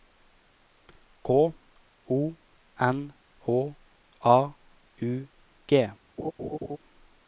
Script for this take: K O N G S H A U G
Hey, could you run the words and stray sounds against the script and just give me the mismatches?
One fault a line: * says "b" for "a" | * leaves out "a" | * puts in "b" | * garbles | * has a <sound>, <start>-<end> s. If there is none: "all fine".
* leaves out "G S"
* has a laugh, 6.2-6.8 s